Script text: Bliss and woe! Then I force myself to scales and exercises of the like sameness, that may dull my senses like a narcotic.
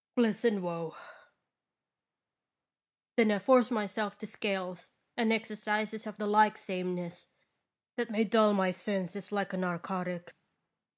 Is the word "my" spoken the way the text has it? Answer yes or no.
yes